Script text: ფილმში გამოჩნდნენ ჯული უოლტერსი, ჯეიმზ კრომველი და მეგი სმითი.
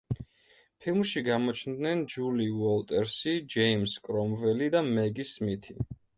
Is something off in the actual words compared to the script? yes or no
no